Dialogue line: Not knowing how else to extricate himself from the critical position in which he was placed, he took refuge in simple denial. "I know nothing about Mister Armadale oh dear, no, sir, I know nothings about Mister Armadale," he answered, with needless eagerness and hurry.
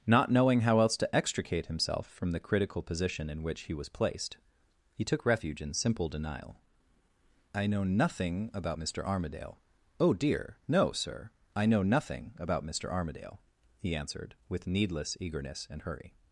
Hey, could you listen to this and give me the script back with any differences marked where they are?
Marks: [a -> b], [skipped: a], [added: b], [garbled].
Not knowing how else to extricate himself from the critical position in which he was placed, he took refuge in simple denial. "I know nothing about Mister Armadale oh dear, no, sir, I know [nothings -> nothing] about Mister Armadale," he answered, with needless eagerness and hurry.